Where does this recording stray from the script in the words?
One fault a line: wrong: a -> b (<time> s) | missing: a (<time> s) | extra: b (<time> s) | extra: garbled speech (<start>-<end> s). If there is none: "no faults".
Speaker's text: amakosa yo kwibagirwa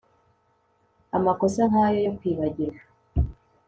extra: nkayo (1.7 s)